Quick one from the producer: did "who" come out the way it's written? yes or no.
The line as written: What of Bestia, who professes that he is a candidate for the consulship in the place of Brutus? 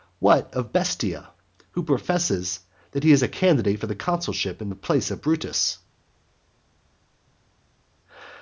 yes